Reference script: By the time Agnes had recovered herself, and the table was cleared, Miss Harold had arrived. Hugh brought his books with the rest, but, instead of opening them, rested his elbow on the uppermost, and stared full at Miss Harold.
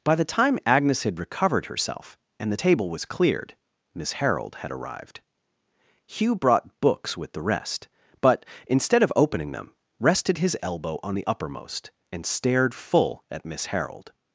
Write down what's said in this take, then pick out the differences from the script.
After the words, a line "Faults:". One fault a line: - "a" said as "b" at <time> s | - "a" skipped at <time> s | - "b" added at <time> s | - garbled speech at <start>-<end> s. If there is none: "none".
By the time Agnes had recovered herself, and the table was cleared, Miss Harold had arrived. Hugh brought books with the rest, but, instead of opening them, rested his elbow on the uppermost, and stared full at Miss Harold.
Faults:
- "his" skipped at 6.8 s